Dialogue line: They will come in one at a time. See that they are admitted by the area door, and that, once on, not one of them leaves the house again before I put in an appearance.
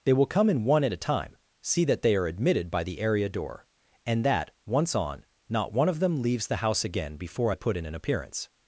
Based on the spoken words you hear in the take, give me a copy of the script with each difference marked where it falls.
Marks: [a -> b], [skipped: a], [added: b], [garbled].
They will come in one at a time. See that they are admitted by the area door, and that, once on, not one of them leaves the house again before I put in an appearance.